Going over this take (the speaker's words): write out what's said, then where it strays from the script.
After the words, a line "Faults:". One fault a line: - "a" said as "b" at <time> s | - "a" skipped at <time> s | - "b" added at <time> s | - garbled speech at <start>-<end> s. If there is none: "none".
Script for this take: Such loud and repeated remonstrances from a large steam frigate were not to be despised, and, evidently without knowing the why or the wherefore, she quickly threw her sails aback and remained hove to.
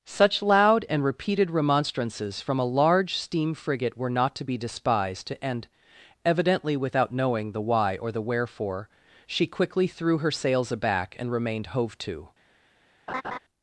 Such loud and repeated remonstrances from a large steam frigate were not to be despised, and, evidently without knowing the why or the wherefore, she quickly threw her sails aback and remained hove to.
Faults:
none